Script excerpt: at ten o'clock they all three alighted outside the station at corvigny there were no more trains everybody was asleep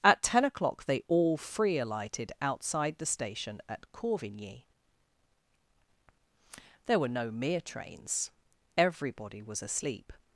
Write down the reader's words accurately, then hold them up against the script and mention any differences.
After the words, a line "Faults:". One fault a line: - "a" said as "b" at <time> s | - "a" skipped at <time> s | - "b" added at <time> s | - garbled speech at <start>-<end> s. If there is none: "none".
at ten o'clock they all free alighted outside the station at corvigny there were no mere trains everybody was asleep
Faults:
- "three" said as "free" at 1.4 s
- "more" said as "mere" at 7.3 s